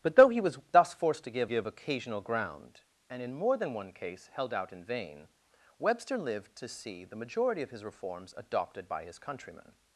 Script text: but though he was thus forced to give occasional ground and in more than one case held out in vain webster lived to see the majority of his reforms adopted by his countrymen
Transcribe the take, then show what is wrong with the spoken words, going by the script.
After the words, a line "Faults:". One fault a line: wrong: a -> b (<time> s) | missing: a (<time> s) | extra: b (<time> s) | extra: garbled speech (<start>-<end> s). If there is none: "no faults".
but though he was thus forced to give give occasional ground and in more than one case held out in vain webster lived to see the majority of his reforms adopted by his countrymen
Faults:
extra: give (1.5 s)